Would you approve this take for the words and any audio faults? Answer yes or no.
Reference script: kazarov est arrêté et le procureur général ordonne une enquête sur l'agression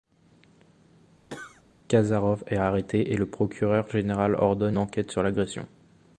no